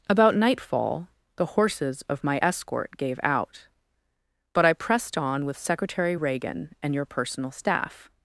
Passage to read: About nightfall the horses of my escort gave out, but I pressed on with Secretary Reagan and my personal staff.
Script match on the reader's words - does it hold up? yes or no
no